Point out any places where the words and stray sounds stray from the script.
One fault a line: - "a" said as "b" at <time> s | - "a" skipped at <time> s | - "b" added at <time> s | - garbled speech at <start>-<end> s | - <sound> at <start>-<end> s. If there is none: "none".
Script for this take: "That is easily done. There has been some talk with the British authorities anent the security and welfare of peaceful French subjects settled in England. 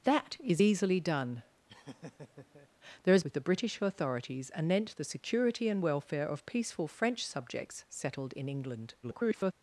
- laugh at 1.7-2.7 s
- "been some talk" skipped at 3.2 s
- garbled speech at 9.0-9.5 s